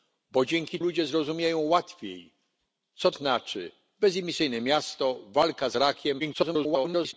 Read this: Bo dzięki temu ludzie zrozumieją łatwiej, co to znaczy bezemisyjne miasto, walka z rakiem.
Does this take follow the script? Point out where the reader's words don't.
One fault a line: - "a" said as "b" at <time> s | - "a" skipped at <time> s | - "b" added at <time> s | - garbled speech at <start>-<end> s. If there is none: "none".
- "temu" skipped at 0.8 s
- "to" skipped at 3.1 s
- garbled speech at 6.2-7.1 s